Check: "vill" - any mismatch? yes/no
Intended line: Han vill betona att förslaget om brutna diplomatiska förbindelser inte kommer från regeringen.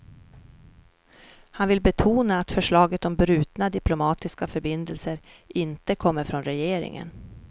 no